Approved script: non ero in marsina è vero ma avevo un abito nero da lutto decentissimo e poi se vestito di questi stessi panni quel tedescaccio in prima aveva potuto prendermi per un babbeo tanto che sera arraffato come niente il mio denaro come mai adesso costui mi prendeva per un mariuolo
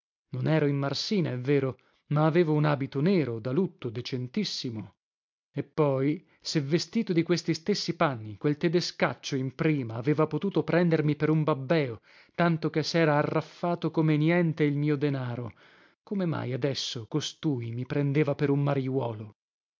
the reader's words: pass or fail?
pass